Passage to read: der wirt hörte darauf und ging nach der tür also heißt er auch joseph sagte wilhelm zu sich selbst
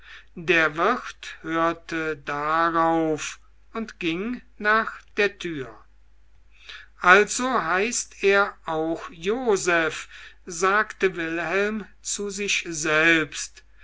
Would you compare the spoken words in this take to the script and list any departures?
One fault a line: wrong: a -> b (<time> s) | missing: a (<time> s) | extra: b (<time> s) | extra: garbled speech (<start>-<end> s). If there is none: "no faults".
no faults